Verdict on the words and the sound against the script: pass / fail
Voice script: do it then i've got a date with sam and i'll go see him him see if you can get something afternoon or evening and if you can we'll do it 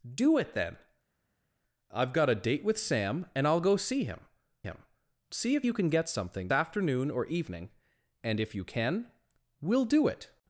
pass